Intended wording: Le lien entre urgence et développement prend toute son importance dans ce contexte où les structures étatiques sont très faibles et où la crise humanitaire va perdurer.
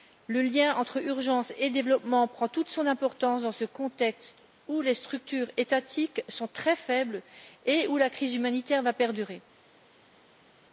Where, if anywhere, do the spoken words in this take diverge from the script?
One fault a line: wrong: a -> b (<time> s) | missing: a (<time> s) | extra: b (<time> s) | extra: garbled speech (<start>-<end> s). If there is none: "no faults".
no faults